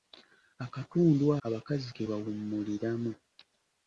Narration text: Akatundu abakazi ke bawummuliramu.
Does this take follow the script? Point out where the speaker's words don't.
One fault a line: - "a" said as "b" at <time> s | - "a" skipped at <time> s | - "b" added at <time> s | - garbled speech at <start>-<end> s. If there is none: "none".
none